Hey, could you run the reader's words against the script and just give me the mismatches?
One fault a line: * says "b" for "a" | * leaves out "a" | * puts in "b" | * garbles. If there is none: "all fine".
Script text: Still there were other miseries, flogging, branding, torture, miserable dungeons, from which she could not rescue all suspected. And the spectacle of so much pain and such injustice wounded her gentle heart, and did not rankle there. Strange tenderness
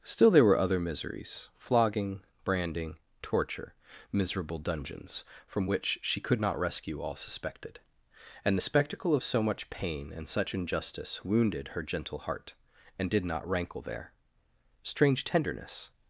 all fine